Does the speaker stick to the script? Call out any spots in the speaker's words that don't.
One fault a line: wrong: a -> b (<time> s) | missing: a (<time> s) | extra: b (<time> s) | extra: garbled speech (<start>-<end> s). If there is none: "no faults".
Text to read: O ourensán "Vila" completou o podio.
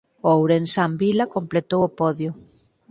no faults